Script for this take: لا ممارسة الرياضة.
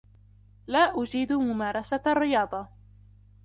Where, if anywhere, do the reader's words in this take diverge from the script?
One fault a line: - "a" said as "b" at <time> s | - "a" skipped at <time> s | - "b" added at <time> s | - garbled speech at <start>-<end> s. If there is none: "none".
- "أجيد" added at 1.0 s